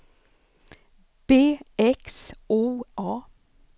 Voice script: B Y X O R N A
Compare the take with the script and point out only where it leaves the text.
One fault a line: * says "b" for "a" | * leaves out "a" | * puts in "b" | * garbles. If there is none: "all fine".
* leaves out "Y"
* leaves out "R N"